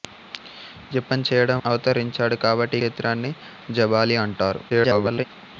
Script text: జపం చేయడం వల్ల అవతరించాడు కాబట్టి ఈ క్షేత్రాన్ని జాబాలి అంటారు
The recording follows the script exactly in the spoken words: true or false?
false